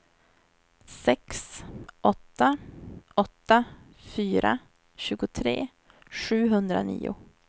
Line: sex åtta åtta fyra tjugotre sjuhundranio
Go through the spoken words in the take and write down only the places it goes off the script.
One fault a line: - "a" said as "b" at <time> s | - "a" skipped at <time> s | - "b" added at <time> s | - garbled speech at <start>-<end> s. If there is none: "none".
none